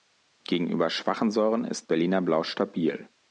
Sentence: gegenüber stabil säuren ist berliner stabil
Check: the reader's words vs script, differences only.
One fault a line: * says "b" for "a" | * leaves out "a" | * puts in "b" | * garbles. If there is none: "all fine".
* says "schwachen" for "stabil"
* puts in "blau"